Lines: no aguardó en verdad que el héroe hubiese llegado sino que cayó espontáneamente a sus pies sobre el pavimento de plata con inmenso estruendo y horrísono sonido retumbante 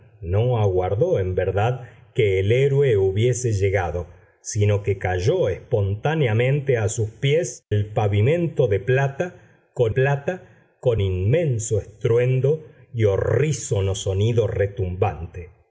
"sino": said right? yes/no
yes